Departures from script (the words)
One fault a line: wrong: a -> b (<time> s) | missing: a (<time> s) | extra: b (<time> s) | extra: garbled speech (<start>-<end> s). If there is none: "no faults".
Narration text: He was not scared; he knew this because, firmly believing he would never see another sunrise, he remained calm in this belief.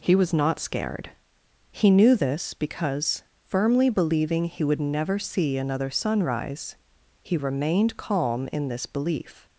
no faults